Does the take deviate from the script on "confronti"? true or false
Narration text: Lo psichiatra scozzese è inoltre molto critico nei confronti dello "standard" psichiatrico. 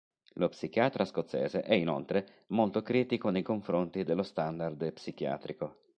false